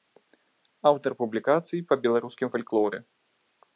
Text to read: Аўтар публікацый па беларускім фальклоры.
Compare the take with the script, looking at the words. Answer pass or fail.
pass